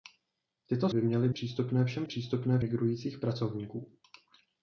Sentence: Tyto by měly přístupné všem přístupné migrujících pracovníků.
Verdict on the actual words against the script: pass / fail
pass